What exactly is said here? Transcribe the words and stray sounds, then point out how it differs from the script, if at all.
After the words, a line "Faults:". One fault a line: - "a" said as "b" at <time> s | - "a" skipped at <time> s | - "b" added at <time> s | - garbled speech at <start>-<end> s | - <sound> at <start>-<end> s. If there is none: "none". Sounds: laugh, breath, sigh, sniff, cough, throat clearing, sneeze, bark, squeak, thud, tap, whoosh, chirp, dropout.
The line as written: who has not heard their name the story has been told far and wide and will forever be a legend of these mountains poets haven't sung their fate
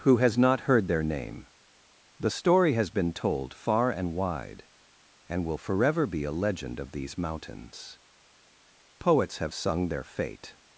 who has not heard their name the story has been told far and wide and will forever be a legend of these mountains poets have sung their fate
Faults:
- "haven't" said as "have" at 9.4 s